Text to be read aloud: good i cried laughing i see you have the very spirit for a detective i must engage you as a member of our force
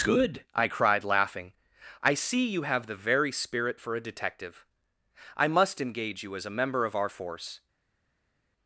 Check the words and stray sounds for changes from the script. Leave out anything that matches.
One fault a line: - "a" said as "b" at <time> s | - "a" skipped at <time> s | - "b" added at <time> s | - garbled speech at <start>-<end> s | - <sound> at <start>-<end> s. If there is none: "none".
none